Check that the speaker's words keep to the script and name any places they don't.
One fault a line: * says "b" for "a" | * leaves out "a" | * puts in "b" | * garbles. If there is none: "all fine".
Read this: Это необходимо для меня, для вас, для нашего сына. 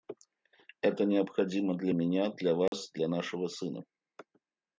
all fine